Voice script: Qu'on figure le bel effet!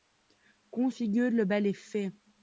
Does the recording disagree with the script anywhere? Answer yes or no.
no